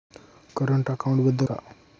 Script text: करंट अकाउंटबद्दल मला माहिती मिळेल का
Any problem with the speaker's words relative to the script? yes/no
yes